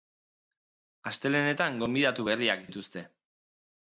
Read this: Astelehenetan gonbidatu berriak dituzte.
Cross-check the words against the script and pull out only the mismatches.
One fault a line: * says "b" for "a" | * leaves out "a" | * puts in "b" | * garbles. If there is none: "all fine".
all fine